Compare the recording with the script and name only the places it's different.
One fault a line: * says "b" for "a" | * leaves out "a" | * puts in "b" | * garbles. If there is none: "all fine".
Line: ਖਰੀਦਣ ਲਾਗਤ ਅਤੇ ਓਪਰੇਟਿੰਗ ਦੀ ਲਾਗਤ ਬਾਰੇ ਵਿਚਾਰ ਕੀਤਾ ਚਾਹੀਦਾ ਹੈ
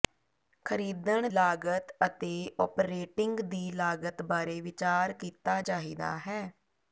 all fine